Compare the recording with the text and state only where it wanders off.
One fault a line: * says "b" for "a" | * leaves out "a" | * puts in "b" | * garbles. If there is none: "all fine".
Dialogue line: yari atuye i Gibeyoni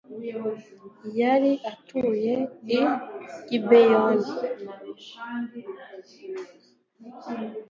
all fine